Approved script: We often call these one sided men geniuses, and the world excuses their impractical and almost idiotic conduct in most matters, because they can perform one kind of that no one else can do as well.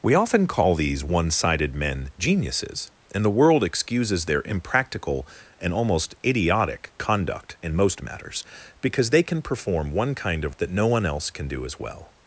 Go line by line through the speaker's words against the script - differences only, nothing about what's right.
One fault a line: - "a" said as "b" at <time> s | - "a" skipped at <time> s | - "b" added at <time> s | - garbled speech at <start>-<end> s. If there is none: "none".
none